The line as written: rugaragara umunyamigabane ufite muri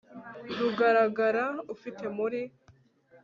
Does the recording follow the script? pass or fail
fail